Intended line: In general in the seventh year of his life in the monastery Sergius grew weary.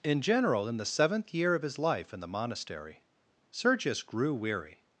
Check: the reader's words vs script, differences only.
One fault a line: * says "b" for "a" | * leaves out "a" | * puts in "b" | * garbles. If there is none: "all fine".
all fine